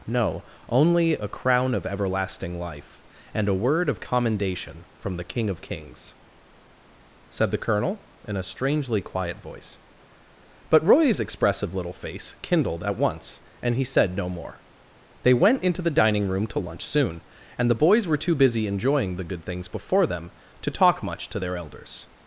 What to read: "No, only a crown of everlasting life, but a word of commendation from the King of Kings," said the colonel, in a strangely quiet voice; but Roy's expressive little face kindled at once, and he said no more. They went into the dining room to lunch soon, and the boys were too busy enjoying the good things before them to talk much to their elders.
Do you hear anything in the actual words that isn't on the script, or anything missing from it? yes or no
yes